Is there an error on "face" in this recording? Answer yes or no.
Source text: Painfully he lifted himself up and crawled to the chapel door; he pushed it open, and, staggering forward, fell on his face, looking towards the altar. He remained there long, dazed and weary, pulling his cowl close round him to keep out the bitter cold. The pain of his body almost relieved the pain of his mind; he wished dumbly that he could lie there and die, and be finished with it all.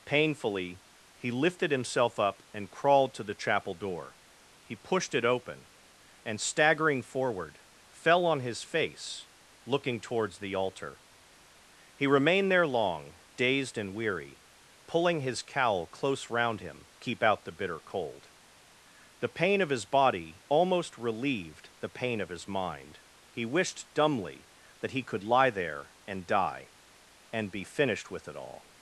no